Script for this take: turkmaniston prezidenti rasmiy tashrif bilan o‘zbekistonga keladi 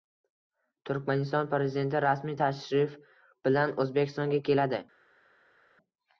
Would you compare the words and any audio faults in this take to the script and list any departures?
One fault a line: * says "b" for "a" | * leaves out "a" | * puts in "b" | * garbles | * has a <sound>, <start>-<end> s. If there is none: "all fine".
all fine